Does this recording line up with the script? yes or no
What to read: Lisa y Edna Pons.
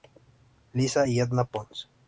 yes